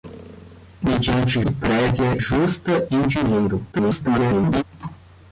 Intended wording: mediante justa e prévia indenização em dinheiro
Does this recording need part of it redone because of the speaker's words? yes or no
yes